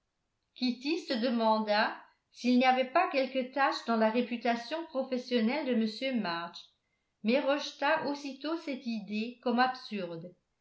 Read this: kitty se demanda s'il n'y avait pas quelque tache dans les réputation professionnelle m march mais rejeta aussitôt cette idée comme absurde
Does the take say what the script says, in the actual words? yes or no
no